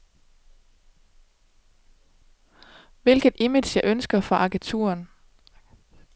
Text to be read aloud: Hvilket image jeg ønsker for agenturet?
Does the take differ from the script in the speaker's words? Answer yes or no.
no